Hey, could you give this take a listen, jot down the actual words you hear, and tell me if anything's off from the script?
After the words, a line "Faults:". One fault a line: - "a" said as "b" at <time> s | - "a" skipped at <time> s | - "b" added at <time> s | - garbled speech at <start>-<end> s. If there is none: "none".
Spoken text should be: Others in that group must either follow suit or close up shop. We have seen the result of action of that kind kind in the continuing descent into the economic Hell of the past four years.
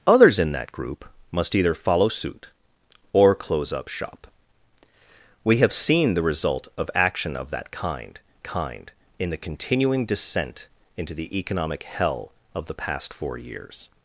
Others in that group must either follow suit or close up shop. We have seen the result of action of that kind kind in the continuing descent into the economic Hell of the past four years.
Faults:
none